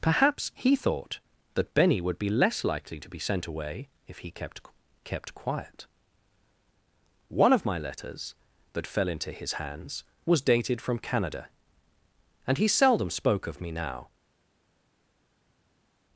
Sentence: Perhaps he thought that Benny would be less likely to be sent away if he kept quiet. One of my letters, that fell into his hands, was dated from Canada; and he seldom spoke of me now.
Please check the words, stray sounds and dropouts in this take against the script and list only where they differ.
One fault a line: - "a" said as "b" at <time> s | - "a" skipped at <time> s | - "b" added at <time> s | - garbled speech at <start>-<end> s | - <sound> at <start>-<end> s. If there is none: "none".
- "kept" added at 5.0 s